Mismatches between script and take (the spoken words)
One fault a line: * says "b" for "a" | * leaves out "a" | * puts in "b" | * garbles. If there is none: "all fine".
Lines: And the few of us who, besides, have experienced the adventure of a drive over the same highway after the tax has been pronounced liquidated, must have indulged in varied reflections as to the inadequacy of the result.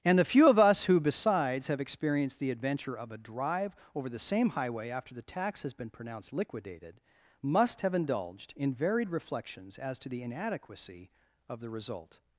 all fine